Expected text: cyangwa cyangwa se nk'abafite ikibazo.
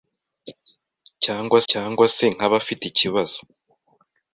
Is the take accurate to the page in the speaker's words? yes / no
yes